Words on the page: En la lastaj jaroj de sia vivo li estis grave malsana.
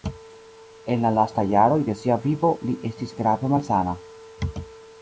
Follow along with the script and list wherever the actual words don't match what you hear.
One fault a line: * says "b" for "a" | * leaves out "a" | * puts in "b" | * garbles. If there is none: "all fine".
all fine